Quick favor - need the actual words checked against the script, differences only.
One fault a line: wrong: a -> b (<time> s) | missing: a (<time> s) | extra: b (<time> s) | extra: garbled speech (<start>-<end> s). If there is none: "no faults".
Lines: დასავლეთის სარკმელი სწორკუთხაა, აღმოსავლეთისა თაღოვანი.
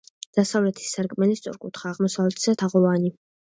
no faults